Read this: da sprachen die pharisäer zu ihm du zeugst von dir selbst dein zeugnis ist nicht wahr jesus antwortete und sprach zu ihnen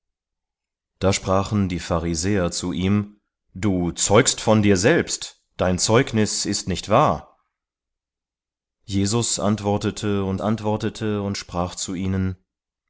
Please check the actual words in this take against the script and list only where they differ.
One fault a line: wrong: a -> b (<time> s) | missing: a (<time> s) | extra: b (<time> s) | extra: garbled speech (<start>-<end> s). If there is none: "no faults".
extra: antwortete und (10.4 s)